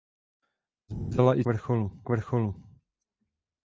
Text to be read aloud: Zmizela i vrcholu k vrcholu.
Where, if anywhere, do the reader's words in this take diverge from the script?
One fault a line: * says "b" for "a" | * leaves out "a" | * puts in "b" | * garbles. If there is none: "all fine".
all fine